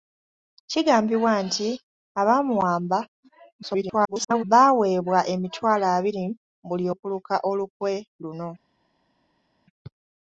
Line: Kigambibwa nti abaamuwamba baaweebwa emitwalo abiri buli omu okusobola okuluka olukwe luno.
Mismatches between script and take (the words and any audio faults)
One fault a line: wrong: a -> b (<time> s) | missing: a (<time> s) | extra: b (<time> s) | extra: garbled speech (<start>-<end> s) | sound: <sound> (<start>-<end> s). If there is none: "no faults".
extra: garbled speech (3.6-4.4 s)
missing: omu okusobola (6.9 s)